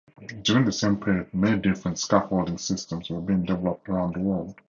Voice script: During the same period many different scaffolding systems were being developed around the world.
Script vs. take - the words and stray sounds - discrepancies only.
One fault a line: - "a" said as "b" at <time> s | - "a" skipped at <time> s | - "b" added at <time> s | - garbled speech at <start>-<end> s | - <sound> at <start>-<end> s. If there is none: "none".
none